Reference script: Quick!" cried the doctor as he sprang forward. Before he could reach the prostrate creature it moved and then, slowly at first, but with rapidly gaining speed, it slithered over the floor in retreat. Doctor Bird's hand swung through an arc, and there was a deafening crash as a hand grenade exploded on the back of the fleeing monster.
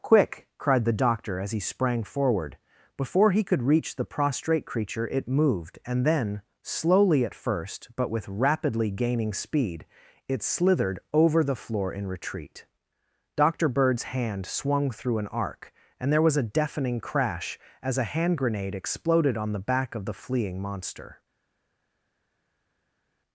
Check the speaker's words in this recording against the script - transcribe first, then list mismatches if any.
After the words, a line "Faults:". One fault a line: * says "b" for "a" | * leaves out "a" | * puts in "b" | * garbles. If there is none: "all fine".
Quick!" cried the doctor as he sprang forward. Before he could reach the prostrate creature it moved and then, slowly at first, but with rapidly gaining speed, it slithered over the floor in retreat. Doctor Bird's hand swung through an arc, and there was a deafening crash as a hand grenade exploded on the back of the fleeing monster.
Faults:
all fine